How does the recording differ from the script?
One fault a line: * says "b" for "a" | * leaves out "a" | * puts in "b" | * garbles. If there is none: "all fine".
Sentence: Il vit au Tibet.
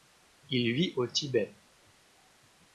all fine